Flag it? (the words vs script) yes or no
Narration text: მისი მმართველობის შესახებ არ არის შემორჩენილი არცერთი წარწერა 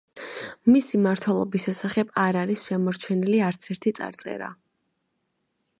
no